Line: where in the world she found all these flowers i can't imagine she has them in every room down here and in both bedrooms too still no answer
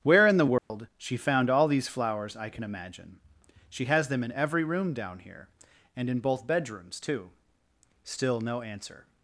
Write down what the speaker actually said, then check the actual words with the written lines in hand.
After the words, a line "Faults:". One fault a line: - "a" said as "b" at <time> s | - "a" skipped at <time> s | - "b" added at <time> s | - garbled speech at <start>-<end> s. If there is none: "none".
where in the world she found all these flowers i can imagine she has them in every room down here and in both bedrooms too still no answer
Faults:
- "can't" said as "can" at 2.5 s